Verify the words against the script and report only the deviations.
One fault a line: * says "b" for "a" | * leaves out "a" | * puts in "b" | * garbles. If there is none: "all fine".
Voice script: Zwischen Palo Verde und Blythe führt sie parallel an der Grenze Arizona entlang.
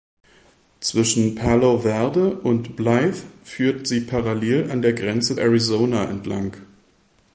all fine